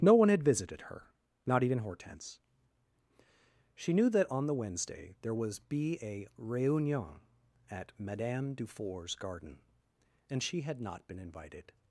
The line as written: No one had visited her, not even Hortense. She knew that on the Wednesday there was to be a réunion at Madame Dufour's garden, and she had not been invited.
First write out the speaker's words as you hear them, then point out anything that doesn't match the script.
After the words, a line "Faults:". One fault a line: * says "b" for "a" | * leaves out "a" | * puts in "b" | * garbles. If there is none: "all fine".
No one had visited her, not even Hortense. She knew that on the Wednesday there was be a réunion at Madame Dufour's garden, and she had not been invited.
Faults:
* leaves out "to"